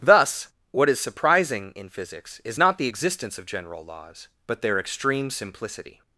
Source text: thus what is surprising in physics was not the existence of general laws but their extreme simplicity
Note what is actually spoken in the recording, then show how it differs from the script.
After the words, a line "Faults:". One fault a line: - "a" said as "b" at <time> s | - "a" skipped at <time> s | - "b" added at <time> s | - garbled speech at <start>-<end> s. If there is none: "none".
thus what is surprising in physics is not the existence of general laws but their extreme simplicity
Faults:
- "was" said as "is" at 2.4 s